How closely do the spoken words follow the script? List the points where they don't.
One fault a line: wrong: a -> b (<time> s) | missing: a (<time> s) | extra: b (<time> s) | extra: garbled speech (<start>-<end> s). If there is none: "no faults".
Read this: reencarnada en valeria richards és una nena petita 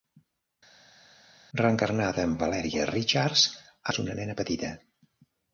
no faults